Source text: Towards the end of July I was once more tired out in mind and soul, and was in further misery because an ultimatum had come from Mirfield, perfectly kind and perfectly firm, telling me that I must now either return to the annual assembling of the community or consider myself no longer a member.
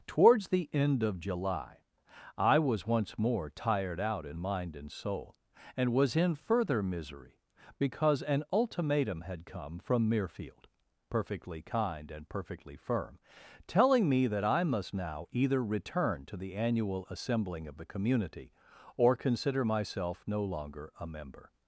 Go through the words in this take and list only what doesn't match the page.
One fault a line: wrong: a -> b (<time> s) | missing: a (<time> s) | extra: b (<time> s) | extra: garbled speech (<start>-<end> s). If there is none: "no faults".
no faults